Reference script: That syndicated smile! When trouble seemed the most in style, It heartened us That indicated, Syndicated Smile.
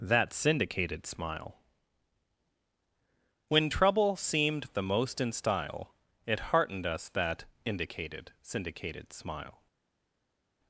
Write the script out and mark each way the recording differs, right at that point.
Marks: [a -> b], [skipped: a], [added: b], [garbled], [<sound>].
That syndicated smile! When trouble seemed the most in style, It heartened us That indicated, Syndicated Smile.